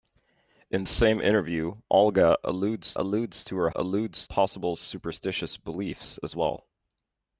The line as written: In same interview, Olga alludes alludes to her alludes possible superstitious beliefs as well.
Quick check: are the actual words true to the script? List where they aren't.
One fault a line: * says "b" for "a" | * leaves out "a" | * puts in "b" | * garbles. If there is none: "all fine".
all fine